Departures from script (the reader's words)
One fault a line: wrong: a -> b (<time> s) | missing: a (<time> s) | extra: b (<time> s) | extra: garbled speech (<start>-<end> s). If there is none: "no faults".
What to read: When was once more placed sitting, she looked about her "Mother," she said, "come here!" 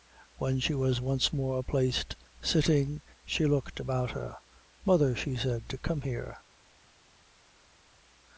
extra: she (0.6 s)